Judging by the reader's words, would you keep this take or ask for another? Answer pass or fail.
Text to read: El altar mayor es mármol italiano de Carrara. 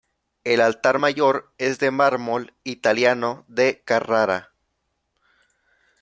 fail